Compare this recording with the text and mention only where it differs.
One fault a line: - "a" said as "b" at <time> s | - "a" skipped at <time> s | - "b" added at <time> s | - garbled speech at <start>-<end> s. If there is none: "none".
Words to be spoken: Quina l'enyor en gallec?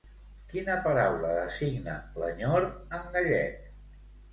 - "paraula designa" added at 0.9 s